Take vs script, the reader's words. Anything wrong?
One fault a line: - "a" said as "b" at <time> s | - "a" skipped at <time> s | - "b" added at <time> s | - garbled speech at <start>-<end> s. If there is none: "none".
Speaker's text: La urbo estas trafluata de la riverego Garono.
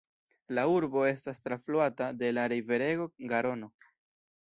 none